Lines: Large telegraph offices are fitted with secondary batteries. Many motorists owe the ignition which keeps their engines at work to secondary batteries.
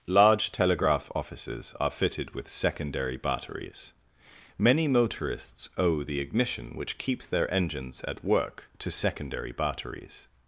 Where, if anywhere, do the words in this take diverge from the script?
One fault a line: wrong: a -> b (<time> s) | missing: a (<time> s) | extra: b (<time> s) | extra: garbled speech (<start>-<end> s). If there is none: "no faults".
no faults